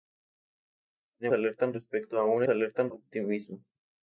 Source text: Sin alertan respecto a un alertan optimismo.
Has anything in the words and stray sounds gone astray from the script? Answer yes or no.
no